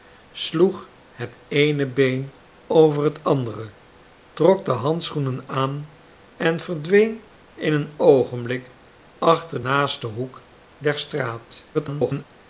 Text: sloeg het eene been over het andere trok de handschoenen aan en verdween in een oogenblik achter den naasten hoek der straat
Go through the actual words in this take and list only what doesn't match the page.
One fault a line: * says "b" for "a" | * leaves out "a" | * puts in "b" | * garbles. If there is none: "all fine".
* leaves out "den"
* garbles